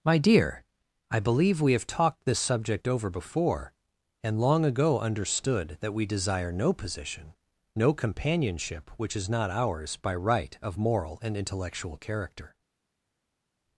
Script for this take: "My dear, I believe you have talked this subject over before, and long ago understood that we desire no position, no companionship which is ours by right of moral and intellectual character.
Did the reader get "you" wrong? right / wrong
wrong